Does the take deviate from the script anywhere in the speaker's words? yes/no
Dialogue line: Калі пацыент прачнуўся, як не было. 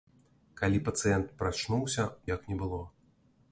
no